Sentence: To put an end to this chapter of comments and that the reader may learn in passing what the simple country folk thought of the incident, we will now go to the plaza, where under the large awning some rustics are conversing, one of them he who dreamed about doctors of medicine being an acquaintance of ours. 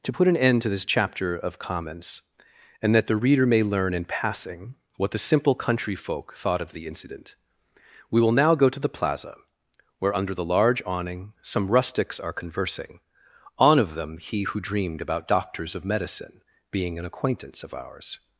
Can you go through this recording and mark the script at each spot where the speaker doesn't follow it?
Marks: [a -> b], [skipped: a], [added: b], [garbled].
To put an end to this chapter of comments and that the reader may learn in passing what the simple country folk thought of the incident, we will now go to the plaza, where under the large awning some rustics are conversing, [one -> on] of them he who dreamed about doctors of medicine being an acquaintance of ours.